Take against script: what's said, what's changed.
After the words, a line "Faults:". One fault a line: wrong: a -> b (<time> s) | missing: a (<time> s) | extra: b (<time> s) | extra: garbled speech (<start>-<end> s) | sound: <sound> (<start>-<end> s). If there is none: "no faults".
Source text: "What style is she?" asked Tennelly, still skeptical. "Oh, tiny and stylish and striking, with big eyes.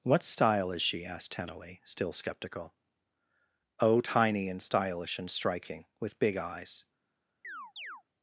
"What style is she?" asked Tennelly, still skeptical. "Oh, tiny and stylish and striking, with big eyes.
Faults:
sound: chirp (7.4-8.0 s)